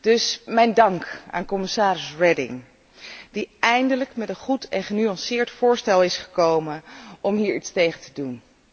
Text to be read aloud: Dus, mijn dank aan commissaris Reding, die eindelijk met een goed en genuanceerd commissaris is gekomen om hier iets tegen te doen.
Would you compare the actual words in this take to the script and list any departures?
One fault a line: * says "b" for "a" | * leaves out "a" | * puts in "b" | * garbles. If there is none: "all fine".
* says "voorstel" for "commissaris"